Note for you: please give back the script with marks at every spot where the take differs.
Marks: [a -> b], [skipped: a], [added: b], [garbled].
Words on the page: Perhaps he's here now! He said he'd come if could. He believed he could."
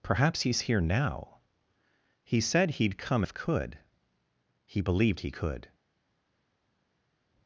Perhaps he's here now! He said he'd come if could. He believed he could."